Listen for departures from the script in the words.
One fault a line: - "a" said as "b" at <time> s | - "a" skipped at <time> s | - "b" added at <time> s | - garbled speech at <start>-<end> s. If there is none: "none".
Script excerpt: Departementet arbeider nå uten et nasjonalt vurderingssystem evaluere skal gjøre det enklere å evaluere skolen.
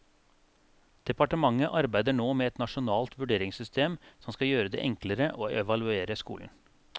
- "uten" said as "med" at 2.4 s
- "evaluere" said as "som" at 4.2 s